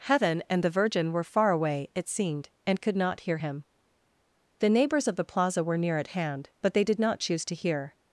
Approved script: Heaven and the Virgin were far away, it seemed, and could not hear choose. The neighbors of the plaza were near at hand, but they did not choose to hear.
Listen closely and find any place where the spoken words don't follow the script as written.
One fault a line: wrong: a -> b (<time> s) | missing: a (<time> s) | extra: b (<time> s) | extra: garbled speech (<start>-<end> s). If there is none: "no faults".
wrong: choose -> him (3.3 s)